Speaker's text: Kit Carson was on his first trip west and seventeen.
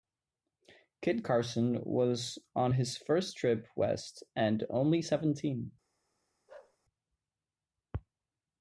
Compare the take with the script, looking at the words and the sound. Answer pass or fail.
fail